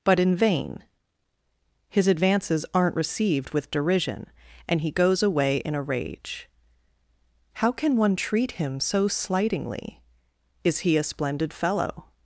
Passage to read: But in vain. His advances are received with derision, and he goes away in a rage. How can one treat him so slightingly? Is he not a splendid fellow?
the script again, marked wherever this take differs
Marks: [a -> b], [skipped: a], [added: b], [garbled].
But in vain. His advances [are -> aren't] received with derision, and he goes away in a rage. How can one treat him so slightingly? Is he [skipped: not] a splendid fellow?